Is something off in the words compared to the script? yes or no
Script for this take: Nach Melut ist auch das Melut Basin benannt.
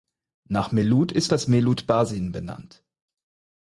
yes